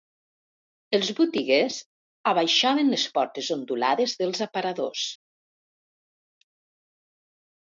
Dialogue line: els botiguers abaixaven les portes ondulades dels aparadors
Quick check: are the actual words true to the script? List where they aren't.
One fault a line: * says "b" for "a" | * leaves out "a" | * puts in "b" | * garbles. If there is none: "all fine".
all fine